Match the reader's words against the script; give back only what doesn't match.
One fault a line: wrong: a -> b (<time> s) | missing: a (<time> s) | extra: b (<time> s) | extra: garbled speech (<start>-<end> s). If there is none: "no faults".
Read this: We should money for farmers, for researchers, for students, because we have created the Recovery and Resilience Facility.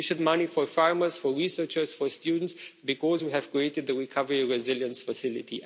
no faults